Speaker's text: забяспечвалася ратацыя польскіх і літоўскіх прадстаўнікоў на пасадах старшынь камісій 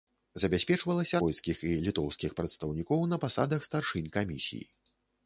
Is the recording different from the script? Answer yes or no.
yes